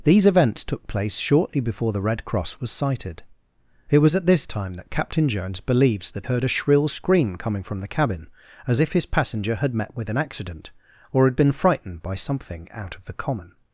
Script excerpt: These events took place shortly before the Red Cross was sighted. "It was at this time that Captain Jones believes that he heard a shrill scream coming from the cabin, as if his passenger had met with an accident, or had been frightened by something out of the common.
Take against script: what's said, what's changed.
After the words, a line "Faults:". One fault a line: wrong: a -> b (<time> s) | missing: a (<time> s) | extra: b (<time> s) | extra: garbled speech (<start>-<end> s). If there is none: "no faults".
These events took place shortly before the Red Cross was sighted. "It was at this time that Captain Jones believes that heard a shrill scream coming from the cabin, as if his passenger had met with an accident, or had been frightened by something out of the common.
Faults:
missing: he (6.3 s)